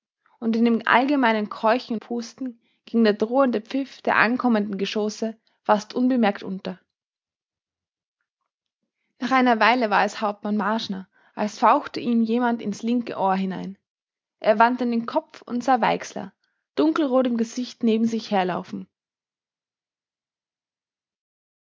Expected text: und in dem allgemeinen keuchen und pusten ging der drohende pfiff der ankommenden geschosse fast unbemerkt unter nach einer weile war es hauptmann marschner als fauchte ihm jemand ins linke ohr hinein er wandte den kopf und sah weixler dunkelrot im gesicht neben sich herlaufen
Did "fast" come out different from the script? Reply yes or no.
no